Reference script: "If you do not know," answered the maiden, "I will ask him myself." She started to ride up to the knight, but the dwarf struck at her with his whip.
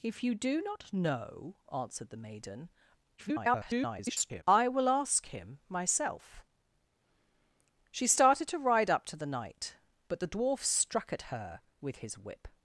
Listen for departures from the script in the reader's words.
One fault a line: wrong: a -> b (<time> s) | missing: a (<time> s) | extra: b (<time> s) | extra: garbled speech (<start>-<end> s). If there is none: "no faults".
extra: garbled speech (3.2-4.4 s)